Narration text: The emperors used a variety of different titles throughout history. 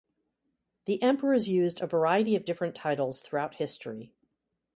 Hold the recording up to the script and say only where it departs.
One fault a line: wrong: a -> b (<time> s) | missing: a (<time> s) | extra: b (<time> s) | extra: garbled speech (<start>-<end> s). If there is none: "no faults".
no faults